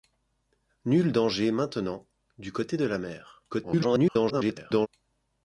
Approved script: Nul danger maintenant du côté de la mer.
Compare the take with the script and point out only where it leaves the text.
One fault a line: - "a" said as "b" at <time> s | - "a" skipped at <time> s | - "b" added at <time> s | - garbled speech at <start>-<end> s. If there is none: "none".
- garbled speech at 3.5-4.9 s